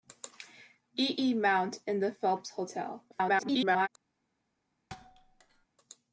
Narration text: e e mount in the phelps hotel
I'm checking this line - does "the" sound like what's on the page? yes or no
yes